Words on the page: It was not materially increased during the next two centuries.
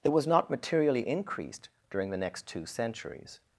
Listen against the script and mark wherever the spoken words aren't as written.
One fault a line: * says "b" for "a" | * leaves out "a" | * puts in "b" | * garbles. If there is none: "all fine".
all fine